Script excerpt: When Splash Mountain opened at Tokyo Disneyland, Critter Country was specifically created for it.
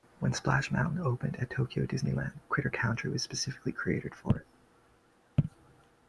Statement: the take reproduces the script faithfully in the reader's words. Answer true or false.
true